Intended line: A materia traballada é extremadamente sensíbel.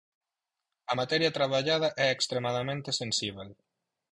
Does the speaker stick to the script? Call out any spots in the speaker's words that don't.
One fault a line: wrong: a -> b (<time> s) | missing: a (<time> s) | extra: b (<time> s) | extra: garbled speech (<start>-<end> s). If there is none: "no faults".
no faults